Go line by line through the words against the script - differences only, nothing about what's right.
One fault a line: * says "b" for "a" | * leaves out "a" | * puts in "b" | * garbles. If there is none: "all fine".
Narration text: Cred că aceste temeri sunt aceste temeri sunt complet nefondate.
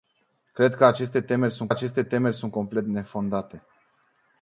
all fine